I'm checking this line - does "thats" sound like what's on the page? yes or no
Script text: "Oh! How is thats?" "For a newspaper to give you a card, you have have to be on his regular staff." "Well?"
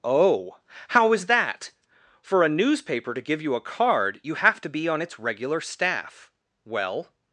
no